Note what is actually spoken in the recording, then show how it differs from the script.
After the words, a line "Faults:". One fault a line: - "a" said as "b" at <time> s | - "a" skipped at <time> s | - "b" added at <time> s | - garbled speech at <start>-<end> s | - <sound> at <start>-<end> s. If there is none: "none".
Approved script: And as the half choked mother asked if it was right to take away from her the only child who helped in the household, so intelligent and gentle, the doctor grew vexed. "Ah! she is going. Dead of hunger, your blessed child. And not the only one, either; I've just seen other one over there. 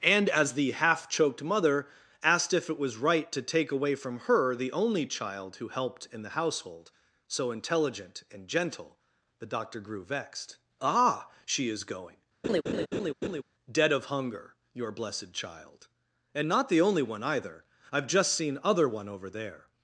And as the half choked mother asked if it was right to take away from her the only child who helped in the household, so intelligent and gentle, the doctor grew vexed. "Ah! she is going. Dead of hunger, your blessed child. And not the only one, either; I've just seen other one over there.
Faults:
- laugh at 12.4-13.4 s